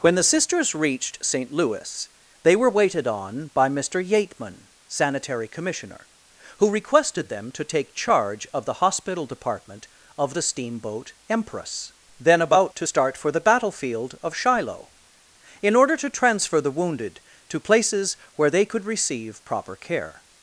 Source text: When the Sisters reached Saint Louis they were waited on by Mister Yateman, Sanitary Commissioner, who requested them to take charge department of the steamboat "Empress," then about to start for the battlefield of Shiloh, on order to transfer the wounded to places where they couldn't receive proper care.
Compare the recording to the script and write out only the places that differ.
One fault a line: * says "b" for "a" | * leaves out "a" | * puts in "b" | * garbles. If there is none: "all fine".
* puts in "of the hospital"
* says "in" for "on"
* says "could" for "couldn't"